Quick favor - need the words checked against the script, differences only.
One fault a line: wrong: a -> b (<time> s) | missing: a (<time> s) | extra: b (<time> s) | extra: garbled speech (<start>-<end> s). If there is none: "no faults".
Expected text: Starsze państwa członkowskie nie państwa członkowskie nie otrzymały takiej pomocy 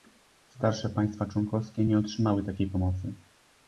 missing: państwa członkowskie nie (2.0 s)